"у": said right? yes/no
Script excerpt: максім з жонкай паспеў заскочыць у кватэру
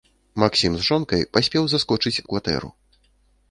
yes